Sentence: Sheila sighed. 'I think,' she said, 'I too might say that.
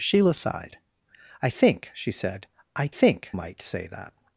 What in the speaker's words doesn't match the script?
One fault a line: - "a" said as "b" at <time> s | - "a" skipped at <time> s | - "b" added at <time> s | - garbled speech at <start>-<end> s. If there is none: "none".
- "too" said as "think" at 2.9 s